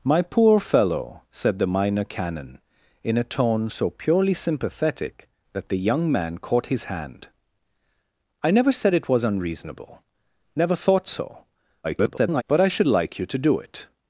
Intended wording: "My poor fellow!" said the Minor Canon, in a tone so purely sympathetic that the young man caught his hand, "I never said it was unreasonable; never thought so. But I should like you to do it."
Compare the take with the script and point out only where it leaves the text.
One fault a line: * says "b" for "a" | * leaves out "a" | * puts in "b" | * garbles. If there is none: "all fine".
* garbles